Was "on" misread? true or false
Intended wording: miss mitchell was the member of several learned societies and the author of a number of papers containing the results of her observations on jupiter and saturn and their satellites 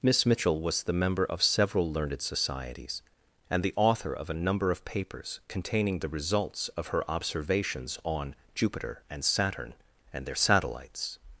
false